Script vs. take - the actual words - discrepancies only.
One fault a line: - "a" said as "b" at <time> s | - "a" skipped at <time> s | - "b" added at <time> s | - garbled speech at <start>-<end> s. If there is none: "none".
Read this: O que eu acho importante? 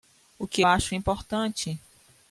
none